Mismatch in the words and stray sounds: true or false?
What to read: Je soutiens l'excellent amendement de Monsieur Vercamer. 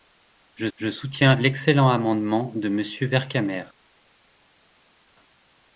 true